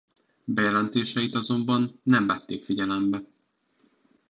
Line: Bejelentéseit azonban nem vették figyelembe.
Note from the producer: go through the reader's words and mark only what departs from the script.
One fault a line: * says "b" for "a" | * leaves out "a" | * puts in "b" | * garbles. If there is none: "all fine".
all fine